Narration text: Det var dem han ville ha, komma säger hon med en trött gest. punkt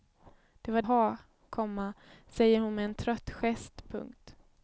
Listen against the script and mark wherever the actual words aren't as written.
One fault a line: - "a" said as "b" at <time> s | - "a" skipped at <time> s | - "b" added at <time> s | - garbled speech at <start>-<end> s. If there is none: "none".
- "dem han ville" skipped at 0.8 s